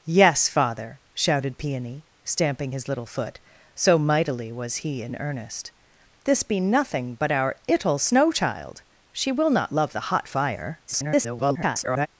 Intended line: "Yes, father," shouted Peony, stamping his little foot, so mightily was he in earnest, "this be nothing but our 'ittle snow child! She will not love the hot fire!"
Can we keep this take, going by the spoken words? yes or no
no